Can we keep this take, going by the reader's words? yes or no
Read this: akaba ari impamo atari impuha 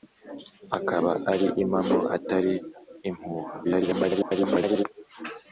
no